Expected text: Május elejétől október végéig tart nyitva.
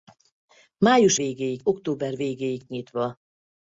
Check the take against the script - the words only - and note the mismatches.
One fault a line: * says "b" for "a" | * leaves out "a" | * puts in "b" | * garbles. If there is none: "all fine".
* says "végéig" for "elejétől"
* leaves out "tart"